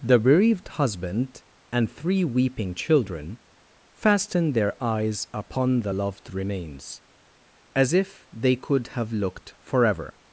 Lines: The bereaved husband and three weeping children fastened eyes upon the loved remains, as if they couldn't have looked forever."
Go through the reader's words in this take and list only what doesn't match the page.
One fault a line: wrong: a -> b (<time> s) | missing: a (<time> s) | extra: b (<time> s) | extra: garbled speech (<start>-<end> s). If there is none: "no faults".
extra: their (4.5 s)
wrong: couldn't -> could (8.5 s)